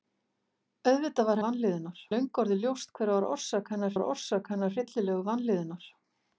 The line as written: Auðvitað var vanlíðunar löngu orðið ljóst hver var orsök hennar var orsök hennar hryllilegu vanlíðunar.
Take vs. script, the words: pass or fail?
pass